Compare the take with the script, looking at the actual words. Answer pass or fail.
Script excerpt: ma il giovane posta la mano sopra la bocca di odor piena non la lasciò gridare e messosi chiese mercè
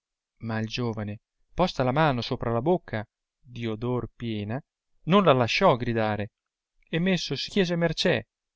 pass